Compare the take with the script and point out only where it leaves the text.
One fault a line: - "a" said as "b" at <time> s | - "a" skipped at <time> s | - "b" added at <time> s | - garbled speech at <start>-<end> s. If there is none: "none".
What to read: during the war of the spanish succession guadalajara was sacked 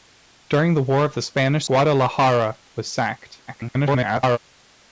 - "succession" skipped at 1.7 s
- garbled speech at 3.5-4.4 s